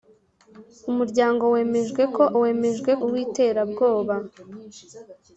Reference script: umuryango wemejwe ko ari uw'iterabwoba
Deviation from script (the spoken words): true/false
true